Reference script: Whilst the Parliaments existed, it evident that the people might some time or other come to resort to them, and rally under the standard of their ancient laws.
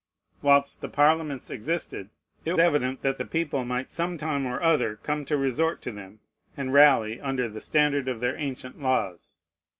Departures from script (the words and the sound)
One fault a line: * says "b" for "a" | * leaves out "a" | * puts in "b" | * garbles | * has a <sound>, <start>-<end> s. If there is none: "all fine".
all fine